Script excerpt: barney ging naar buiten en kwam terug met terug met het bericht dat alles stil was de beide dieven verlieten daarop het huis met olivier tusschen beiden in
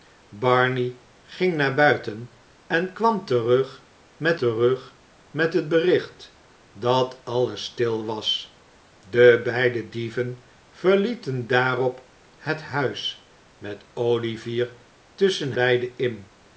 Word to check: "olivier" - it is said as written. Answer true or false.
true